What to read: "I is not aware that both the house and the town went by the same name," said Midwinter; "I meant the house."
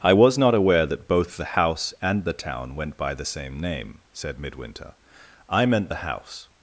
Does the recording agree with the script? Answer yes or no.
no